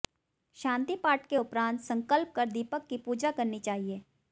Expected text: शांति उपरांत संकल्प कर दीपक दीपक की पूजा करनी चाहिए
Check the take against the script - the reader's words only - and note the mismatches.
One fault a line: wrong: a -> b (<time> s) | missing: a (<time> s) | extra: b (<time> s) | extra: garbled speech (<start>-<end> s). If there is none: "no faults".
extra: पाठ के (0.9 s)
missing: दीपक (2.9 s)